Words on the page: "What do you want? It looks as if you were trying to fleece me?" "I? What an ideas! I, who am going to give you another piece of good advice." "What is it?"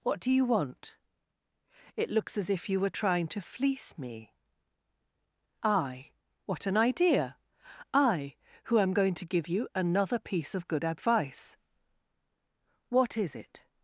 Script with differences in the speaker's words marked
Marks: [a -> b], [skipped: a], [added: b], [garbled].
"What do you want? It looks as if you were trying to fleece me?" "I? What an [ideas! -> idea] I, who am going to give you another piece of good advice." "What is it?"